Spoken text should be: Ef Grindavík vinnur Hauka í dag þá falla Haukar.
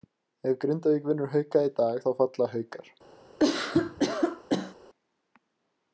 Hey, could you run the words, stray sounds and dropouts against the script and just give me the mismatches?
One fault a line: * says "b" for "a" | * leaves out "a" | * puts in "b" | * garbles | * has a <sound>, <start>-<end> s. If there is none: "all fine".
* has a cough, 3.4-4.8 s